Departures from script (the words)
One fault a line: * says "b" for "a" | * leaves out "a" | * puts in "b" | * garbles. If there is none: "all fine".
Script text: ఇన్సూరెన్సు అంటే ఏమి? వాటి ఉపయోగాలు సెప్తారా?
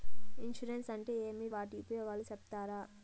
all fine